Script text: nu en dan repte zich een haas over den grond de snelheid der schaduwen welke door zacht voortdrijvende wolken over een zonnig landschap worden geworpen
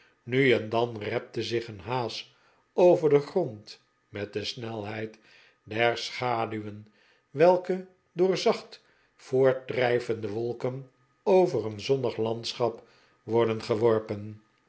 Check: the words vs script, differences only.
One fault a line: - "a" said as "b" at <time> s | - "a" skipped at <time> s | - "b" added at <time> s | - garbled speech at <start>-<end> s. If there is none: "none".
- "met" added at 4.1 s